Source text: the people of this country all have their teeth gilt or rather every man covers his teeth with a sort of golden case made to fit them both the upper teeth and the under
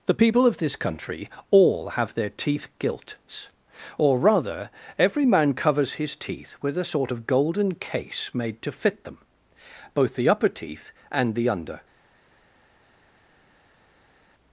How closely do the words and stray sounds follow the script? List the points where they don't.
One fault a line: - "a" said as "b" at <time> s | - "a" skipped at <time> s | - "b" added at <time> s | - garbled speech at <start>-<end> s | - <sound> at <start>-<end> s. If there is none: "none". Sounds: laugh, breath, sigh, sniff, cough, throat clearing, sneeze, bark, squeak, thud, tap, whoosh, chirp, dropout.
none